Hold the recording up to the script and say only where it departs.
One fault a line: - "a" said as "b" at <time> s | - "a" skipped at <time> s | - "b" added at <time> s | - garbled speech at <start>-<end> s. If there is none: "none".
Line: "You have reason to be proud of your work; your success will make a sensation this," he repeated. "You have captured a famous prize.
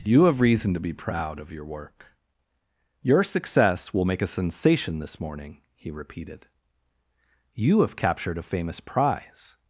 - "morning" added at 5.2 s